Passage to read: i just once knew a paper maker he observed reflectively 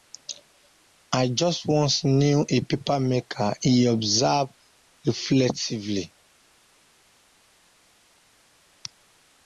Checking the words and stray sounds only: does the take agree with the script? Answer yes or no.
yes